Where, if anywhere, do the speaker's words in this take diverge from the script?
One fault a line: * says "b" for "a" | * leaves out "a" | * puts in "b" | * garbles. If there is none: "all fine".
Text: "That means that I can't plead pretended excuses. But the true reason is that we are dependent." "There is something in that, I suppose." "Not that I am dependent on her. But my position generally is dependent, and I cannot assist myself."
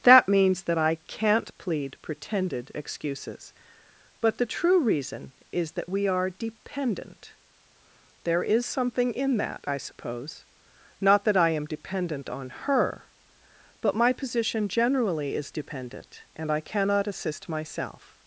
all fine